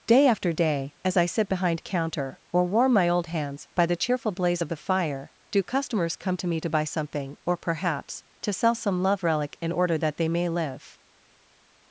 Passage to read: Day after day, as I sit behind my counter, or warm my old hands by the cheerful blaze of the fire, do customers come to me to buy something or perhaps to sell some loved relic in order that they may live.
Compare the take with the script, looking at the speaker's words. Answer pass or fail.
fail